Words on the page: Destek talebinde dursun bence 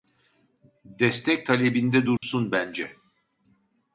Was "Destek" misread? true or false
false